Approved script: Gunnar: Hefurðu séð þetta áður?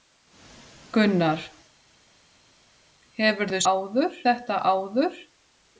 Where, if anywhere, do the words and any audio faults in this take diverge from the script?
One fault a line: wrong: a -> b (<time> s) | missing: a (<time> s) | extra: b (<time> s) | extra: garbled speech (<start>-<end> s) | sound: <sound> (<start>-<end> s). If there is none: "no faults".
wrong: séð -> áður (3.7 s)